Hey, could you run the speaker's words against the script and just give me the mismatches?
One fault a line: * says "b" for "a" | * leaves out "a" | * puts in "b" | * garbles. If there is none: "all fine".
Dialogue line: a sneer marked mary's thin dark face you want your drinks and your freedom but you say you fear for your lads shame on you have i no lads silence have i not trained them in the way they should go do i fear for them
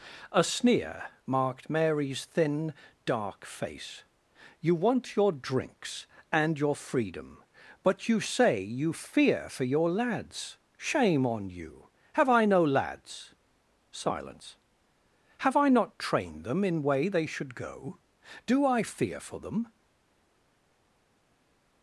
* leaves out "the"